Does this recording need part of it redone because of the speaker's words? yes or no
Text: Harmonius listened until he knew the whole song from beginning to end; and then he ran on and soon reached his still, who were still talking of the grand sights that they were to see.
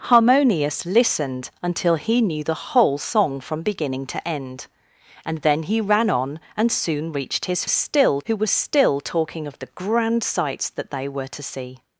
no